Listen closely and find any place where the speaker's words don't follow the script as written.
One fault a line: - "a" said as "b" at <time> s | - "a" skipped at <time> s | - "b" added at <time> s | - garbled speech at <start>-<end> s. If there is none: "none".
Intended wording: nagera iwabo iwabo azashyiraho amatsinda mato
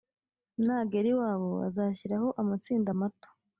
- "iwabo" skipped at 1.5 s